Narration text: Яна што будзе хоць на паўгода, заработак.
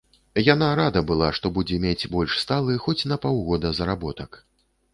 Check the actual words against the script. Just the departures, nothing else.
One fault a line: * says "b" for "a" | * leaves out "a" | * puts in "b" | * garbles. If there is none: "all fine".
* puts in "рада была"
* puts in "мець больш сталы"